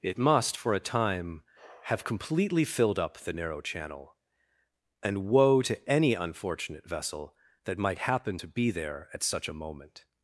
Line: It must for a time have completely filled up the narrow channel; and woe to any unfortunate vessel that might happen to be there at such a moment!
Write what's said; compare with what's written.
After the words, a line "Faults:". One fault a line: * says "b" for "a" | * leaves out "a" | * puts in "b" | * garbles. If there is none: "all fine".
It must for a time have completely filled up the narrow channel; and woe to any unfortunate vessel that might happen to be there at such a moment!
Faults:
all fine